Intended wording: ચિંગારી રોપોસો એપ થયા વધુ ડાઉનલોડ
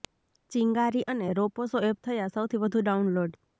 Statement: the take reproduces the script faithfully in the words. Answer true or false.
false